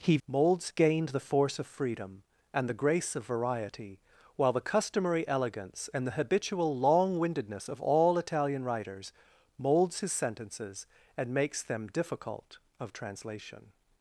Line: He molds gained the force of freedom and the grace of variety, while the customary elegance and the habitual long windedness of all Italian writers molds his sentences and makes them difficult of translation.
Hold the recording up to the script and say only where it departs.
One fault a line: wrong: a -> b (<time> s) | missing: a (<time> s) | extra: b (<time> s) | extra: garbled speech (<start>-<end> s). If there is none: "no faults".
no faults